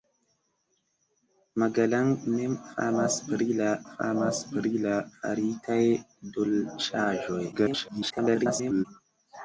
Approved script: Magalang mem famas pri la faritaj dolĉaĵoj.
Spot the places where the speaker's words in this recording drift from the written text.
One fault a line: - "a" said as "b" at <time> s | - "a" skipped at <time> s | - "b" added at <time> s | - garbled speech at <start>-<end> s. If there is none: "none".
- "famas pri la" added at 3.9 s
- garbled speech at 7.5-8.9 s